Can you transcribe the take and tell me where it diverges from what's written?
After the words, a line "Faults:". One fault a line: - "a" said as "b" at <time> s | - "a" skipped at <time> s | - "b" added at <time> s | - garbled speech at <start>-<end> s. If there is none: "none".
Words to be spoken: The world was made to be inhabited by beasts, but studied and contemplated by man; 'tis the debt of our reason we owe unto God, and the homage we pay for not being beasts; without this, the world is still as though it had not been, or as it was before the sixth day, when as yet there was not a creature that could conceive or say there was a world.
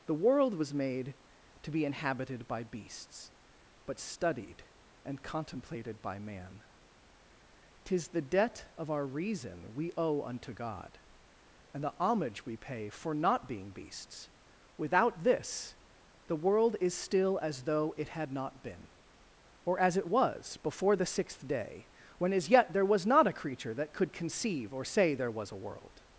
The world was made to be inhabited by beasts, but studied and contemplated by man; 'tis the debt of our reason we owe unto God, and the homage we pay for not being beasts; without this, the world is still as though it had not been, or as it was before the sixth day, when as yet there was not a creature that could conceive or say there was a world.
Faults:
none